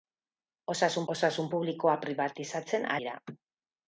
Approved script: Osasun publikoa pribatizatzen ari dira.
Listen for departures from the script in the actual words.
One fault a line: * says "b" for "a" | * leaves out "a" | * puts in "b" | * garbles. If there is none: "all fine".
* puts in "osasun"
* leaves out "ari"